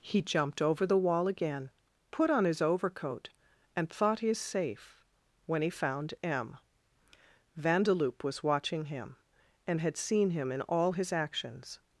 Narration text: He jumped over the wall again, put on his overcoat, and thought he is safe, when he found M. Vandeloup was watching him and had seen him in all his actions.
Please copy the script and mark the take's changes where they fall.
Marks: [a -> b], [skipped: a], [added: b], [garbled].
He jumped over the wall again, put on his overcoat, and thought he is safe, when he found M. Vandeloup was watching him and had seen him in all his actions.